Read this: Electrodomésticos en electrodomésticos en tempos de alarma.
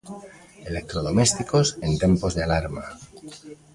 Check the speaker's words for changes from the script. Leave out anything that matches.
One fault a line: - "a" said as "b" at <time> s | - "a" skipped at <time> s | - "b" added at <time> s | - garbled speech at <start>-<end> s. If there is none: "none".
- "electrodomésticos en" skipped at 2.0 s